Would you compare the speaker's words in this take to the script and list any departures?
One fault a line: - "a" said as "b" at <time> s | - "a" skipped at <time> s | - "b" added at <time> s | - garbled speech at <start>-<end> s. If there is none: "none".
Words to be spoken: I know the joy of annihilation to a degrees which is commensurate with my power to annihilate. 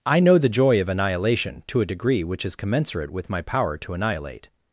- "degrees" said as "degree" at 1.8 s